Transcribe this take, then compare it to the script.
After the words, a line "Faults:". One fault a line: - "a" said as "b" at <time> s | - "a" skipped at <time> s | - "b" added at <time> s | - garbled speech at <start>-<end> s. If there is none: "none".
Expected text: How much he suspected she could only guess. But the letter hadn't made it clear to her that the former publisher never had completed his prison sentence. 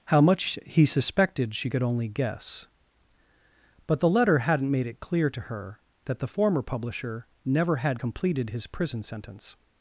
How much he suspected she could only guess. But the letter hadn't made it clear to her that the former publisher never had completed his prison sentence.
Faults:
none